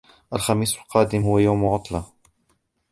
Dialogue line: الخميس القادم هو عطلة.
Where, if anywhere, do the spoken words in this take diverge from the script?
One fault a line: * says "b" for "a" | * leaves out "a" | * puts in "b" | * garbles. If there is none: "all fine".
* puts in "يوم"